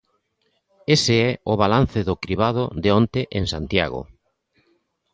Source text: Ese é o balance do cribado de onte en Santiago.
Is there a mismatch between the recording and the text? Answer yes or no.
no